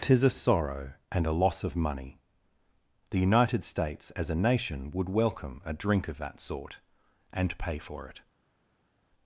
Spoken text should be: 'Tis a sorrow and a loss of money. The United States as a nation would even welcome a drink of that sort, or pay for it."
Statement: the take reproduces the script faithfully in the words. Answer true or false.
false